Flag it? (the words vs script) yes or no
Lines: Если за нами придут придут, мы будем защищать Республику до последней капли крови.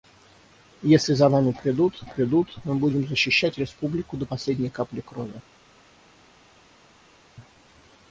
no